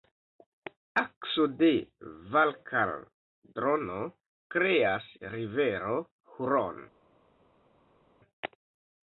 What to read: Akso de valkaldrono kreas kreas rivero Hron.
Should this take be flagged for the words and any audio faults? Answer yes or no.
yes